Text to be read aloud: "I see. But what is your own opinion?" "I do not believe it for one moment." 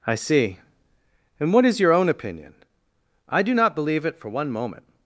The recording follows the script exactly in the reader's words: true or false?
false